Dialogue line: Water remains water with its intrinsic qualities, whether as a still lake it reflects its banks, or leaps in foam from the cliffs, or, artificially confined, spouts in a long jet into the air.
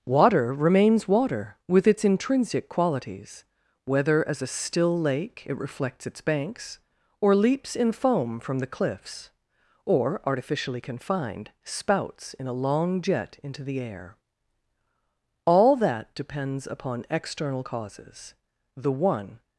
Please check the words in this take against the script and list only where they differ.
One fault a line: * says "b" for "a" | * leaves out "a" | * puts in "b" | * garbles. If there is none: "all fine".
* puts in "All that depends upon external causes the one"